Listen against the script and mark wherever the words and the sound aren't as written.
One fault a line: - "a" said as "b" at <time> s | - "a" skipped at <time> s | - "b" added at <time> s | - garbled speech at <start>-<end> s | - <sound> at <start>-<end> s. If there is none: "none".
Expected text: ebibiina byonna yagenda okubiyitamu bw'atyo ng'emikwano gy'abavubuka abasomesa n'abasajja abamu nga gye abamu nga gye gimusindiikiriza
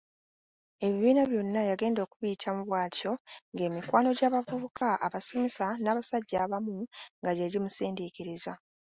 - dropout at 4.8-4.8 s
- "abamu nga gye" skipped at 7.5 s